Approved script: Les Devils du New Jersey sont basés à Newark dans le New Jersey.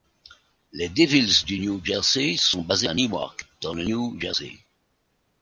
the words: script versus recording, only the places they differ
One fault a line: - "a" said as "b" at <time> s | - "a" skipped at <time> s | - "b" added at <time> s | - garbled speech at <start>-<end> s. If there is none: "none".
none